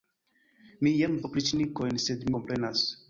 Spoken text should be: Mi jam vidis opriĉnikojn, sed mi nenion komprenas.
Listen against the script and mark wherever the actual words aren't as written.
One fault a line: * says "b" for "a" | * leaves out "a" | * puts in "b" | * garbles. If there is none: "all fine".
* leaves out "vidis"
* leaves out "mi nenion"